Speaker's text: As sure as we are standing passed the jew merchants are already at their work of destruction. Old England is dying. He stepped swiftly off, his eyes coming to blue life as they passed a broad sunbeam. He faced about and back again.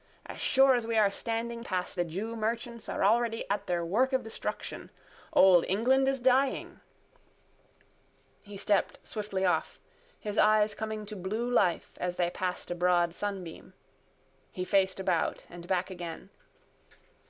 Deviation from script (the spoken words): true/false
false